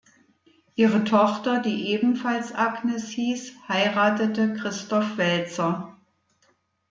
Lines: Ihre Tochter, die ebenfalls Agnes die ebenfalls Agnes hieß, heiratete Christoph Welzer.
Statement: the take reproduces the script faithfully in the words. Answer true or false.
false